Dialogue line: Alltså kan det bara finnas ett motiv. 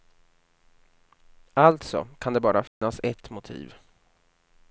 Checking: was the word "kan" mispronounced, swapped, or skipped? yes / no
no